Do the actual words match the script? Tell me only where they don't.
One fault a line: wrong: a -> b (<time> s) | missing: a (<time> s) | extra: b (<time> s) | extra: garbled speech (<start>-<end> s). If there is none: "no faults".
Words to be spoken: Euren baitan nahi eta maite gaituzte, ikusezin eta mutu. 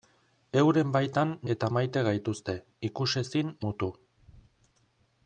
missing: nahi (1.3 s)
missing: eta (3.5 s)